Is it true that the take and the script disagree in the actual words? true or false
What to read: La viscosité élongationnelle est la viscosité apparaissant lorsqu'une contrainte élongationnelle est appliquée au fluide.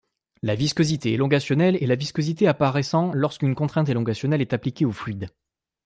false